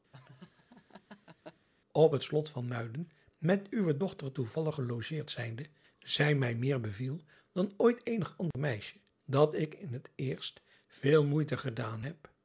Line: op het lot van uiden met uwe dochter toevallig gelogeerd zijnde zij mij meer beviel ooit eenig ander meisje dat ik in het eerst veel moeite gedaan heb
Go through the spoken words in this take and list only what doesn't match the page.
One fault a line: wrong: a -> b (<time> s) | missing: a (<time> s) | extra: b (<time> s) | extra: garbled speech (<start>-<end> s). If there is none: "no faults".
extra: dan (7.5 s)